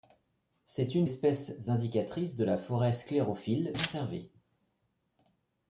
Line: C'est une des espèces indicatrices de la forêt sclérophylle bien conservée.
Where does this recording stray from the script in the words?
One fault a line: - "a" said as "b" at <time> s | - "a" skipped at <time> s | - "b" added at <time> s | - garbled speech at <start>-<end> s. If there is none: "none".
- "des" skipped at 1.1 s
- "bien" skipped at 3.8 s